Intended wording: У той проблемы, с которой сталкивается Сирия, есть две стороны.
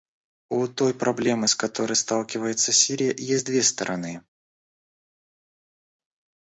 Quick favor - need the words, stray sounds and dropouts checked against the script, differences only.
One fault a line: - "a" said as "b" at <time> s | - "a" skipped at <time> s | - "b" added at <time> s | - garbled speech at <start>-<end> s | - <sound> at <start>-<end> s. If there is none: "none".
none